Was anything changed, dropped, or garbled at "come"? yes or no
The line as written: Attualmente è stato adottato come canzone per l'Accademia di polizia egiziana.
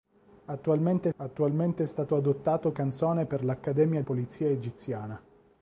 yes